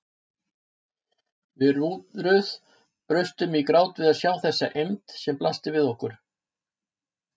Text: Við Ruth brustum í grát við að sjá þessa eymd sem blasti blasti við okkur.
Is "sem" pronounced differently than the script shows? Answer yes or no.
no